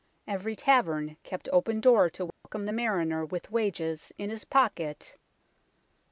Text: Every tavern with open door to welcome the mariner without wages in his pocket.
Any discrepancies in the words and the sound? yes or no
yes